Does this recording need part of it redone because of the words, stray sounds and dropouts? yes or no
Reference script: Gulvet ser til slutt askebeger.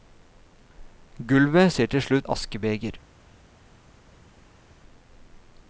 no